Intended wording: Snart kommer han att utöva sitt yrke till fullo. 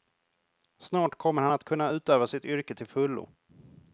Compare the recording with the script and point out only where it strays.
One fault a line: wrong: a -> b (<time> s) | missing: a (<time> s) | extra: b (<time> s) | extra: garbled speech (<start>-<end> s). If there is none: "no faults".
extra: kunna (1.6 s)